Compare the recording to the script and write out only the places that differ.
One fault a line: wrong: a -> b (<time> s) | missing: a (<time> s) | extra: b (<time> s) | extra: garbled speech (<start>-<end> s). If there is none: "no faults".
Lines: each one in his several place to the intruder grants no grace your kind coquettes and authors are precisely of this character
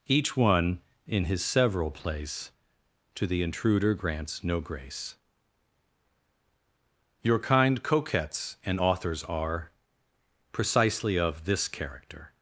no faults